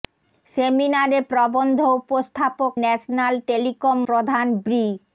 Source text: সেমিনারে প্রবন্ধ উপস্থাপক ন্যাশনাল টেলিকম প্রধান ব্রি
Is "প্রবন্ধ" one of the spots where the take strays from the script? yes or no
no